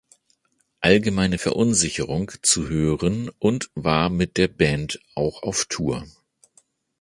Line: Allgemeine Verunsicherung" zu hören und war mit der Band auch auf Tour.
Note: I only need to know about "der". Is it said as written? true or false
true